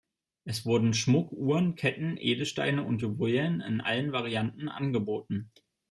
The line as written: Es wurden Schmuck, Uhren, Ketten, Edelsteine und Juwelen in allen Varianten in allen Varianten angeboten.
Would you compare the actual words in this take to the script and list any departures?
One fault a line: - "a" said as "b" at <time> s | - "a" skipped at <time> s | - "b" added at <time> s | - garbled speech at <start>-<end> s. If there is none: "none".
- "in allen Varianten" skipped at 4.7 s